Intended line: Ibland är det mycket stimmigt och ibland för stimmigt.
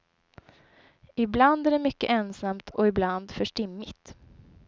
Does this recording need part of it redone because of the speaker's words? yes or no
yes